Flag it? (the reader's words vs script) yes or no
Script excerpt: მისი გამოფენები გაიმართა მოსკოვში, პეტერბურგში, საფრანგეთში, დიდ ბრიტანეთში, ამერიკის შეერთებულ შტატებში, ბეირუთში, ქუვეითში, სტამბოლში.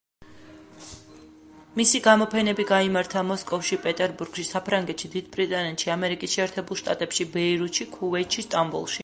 no